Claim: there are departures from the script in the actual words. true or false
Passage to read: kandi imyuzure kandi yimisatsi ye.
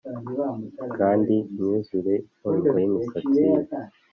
true